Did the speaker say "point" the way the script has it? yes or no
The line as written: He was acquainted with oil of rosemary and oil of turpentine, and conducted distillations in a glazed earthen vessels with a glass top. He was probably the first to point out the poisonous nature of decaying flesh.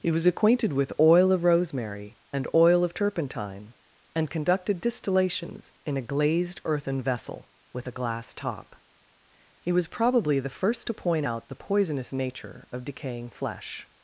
yes